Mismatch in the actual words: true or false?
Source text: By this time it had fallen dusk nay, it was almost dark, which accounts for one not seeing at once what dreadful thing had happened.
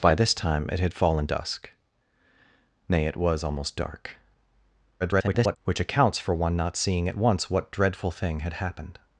true